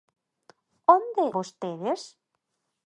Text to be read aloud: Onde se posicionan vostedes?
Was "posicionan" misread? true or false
true